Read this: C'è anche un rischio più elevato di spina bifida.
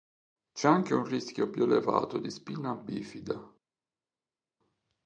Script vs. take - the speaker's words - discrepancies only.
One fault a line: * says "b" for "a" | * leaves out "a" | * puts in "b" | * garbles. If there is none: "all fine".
all fine